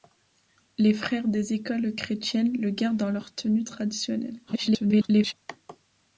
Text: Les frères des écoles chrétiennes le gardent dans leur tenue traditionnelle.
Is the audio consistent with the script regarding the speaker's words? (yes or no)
no